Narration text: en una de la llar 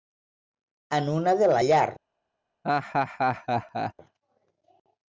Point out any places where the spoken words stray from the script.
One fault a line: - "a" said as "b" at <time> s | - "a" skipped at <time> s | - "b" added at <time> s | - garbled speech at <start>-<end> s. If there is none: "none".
none